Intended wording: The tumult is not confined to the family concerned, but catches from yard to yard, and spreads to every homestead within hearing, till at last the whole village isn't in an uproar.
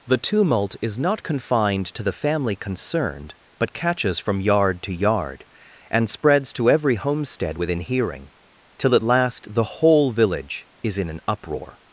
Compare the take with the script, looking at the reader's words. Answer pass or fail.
fail